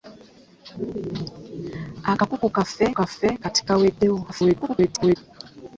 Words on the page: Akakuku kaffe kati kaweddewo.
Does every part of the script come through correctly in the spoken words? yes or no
no